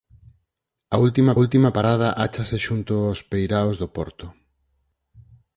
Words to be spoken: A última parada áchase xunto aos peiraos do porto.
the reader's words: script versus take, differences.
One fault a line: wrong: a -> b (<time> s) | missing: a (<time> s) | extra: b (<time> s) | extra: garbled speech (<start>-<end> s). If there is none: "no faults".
extra: última (1.4 s)